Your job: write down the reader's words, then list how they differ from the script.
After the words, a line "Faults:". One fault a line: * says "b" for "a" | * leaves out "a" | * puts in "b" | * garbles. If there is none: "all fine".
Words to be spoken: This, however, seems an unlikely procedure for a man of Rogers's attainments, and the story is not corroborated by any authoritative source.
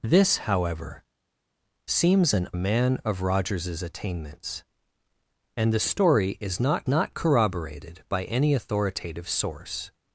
This, however, seems an a man of Rogers's attainments, and the story is not not corroborated by any authoritative source.
Faults:
* leaves out "unlikely procedure for"
* puts in "not"